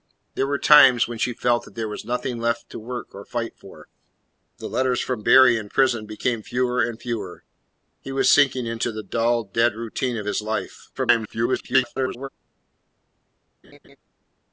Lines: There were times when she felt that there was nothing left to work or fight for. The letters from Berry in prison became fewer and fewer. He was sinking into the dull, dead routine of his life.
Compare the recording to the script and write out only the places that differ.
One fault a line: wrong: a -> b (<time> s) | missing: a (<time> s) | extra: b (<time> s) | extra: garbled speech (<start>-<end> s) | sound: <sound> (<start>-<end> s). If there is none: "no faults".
extra: garbled speech (10.9-12.3 s)
sound: laugh (13.6-14.0 s)